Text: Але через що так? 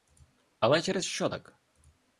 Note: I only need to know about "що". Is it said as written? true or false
true